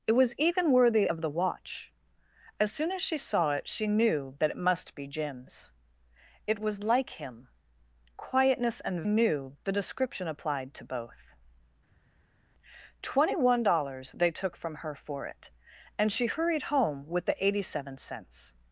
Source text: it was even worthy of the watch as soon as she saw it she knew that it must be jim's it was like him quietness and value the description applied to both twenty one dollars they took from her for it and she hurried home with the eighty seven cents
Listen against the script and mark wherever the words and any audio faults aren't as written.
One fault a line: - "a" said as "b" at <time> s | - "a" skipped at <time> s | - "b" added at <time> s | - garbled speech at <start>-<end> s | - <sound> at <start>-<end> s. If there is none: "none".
- "value" said as "knew" at 9.1 s